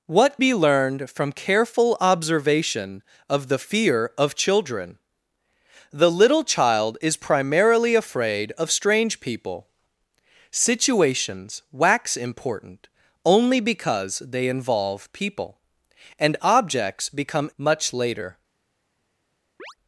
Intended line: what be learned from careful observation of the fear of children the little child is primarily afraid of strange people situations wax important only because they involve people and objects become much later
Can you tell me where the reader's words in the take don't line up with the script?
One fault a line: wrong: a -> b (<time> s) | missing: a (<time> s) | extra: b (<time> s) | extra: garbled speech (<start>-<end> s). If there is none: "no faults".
no faults